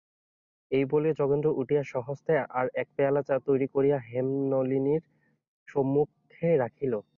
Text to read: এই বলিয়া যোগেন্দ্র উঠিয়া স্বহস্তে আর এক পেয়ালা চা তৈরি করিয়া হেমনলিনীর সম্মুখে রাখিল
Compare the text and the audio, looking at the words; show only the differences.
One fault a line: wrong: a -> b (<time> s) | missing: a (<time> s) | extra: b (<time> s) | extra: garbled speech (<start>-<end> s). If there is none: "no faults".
no faults